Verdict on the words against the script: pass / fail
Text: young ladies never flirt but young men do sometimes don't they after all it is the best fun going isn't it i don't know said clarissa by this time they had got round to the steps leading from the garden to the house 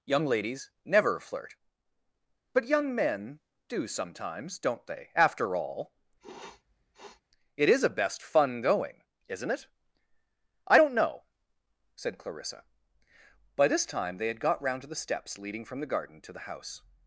fail